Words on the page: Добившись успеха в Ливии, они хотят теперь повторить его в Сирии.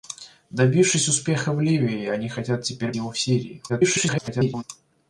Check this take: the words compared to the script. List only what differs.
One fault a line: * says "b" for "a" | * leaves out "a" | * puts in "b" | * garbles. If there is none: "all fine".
* leaves out "повторить"
* garbles